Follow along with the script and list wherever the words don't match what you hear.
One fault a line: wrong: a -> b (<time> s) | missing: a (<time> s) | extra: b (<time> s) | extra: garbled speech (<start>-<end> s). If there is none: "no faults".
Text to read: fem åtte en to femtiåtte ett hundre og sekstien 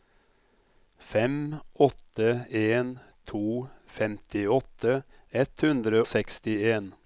missing: og (6.0 s)